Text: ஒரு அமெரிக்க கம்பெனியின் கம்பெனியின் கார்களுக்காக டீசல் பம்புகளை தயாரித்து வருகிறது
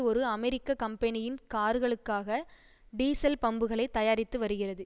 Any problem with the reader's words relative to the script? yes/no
yes